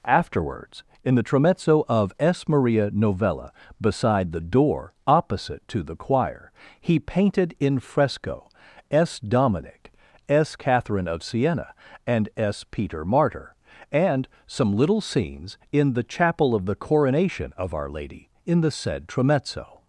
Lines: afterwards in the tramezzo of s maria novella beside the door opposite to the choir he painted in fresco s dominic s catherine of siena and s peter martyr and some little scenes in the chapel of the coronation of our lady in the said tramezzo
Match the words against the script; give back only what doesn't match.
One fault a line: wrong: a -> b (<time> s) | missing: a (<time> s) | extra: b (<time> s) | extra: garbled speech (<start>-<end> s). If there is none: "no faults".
no faults